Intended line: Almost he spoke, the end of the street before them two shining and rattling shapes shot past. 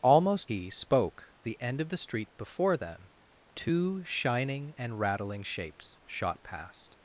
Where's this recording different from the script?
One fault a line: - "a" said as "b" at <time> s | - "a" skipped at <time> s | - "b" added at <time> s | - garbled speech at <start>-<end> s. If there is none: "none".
none